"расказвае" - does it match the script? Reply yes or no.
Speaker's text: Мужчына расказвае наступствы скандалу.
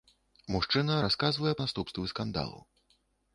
yes